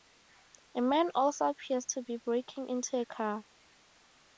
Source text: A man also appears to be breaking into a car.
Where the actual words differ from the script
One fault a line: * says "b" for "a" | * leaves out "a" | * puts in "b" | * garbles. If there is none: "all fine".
all fine